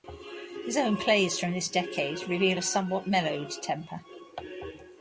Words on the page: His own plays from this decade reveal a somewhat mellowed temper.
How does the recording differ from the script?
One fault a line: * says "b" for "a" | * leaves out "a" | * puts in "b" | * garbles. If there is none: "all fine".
all fine